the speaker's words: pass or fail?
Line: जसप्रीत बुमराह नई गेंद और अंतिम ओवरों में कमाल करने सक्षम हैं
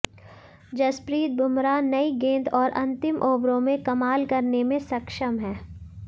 fail